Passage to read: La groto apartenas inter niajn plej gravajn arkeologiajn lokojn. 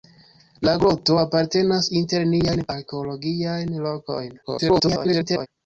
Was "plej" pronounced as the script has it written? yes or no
no